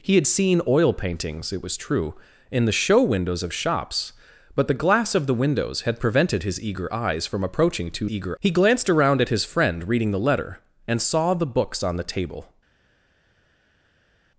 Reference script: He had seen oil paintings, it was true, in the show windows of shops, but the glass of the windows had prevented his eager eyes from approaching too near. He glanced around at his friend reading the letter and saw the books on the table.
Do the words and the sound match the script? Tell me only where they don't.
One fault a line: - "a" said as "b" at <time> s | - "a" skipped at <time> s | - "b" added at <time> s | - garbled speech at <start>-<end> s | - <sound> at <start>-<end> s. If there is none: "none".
- "near" said as "eager" at 8.1 s